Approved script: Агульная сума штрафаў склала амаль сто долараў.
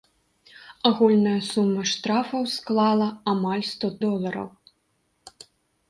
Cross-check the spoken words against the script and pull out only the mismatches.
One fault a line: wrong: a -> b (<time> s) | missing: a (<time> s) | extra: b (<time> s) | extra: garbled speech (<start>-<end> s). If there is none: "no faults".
no faults